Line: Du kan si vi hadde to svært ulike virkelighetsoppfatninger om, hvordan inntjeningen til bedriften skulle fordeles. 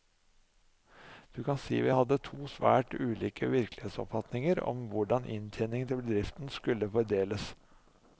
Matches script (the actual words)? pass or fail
pass